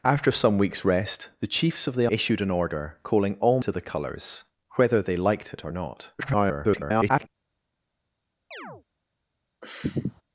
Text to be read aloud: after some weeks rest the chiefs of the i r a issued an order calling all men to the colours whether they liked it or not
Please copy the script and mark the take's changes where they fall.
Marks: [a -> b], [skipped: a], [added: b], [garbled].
after some weeks rest the chiefs of the [skipped: i r a] issued an order calling all [skipped: men] to the colours whether they liked it or not [garbled]